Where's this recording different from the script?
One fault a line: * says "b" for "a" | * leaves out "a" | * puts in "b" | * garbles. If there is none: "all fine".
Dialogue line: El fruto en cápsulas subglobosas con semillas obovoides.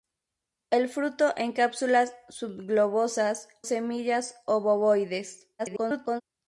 * leaves out "con"
* garbles